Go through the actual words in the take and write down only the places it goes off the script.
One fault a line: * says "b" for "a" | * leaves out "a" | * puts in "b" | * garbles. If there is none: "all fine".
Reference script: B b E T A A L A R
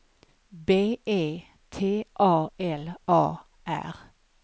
* leaves out "b"
* leaves out "A"